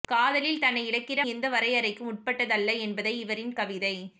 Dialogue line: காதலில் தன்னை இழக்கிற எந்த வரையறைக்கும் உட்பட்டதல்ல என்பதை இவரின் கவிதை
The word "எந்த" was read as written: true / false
true